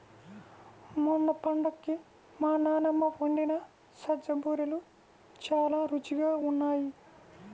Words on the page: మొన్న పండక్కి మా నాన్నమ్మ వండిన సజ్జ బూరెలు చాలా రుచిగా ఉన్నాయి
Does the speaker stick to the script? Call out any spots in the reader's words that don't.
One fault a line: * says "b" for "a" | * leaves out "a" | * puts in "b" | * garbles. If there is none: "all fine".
all fine